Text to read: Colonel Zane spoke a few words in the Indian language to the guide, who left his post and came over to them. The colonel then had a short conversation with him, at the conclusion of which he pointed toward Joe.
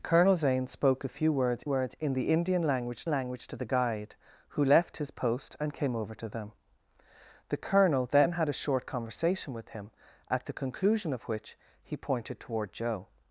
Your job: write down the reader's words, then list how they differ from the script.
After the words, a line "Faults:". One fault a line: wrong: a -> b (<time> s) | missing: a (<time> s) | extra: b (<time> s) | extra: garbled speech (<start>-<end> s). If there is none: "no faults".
Colonel Zane spoke a few words words in the Indian language language to the guide, who left his post and came over to them. The colonel then had a short conversation with him, at the conclusion of which he pointed toward Joe.
Faults:
extra: words (1.6 s)
extra: language (3.0 s)